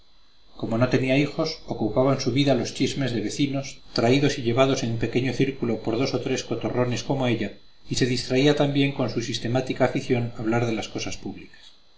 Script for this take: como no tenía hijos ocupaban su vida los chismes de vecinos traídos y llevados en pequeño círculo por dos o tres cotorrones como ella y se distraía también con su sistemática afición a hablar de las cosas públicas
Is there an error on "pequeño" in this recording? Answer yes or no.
no